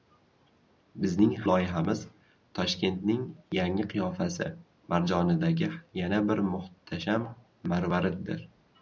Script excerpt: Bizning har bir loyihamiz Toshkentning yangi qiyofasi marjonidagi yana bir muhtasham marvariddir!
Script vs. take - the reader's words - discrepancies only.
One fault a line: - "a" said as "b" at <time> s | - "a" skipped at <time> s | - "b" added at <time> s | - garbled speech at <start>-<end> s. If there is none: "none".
- "har bir" skipped at 1.4 s